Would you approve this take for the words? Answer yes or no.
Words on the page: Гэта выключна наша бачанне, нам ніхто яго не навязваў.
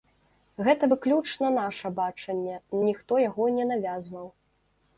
no